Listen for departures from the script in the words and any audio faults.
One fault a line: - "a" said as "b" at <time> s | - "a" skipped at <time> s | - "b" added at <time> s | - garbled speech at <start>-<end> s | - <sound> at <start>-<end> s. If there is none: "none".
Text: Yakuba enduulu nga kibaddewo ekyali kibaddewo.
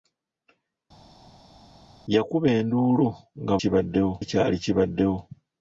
none